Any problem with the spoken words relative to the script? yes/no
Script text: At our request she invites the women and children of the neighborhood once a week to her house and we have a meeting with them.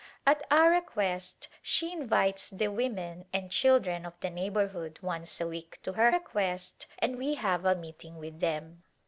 yes